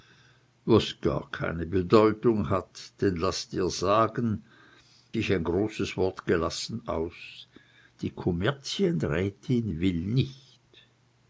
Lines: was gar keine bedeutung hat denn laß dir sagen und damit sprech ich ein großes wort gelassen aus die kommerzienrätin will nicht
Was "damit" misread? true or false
true